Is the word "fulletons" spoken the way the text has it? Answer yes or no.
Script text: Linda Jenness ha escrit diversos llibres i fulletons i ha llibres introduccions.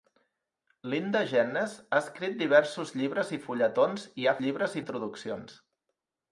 yes